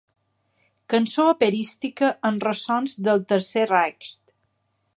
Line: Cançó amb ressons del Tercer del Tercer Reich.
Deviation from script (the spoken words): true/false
true